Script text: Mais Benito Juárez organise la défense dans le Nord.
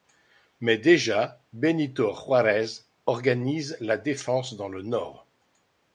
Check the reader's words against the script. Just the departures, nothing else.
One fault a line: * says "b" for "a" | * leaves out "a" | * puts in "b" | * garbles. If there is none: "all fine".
* puts in "déjà"